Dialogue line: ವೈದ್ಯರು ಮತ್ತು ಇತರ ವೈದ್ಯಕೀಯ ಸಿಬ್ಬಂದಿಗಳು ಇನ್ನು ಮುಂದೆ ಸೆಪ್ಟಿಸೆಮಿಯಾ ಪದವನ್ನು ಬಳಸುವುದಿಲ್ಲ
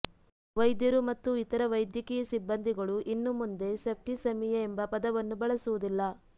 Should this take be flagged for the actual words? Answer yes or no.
yes